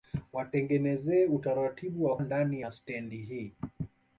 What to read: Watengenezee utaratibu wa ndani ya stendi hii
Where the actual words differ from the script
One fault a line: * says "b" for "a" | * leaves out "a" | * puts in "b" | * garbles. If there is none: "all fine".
all fine